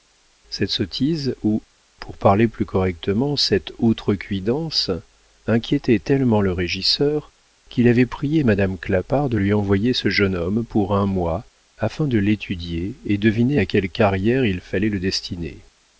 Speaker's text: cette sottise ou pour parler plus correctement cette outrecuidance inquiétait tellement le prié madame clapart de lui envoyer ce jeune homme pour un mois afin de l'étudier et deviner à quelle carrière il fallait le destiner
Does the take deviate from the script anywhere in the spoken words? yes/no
yes